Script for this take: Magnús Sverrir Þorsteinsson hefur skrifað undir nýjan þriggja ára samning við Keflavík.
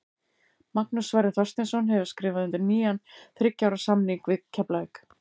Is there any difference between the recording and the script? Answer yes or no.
no